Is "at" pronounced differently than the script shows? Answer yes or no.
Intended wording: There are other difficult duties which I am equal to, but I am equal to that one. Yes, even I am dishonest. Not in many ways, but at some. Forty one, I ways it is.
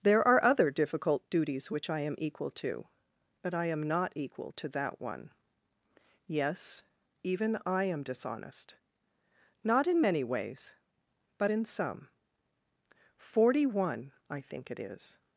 yes